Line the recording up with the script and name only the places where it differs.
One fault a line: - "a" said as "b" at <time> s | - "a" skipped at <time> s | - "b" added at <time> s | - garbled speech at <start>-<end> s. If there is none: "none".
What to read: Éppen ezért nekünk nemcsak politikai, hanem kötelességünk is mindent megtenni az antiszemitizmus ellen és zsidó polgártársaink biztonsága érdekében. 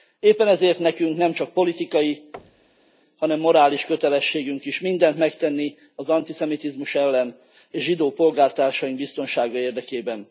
- "morális" added at 3.4 s